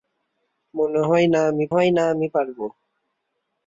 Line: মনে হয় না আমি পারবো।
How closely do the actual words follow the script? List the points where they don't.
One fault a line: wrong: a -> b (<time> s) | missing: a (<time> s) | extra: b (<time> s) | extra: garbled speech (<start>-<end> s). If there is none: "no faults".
extra: হয় না আমি (1.7 s)